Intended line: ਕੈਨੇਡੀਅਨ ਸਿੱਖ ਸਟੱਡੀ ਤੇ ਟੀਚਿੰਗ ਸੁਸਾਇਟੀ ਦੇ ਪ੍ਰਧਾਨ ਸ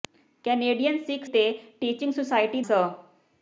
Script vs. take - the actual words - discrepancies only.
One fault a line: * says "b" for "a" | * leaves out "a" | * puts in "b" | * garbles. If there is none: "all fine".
* leaves out "ਸਟੱਡੀ"
* leaves out "ਦੇ ਪ੍ਰਧਾਨ"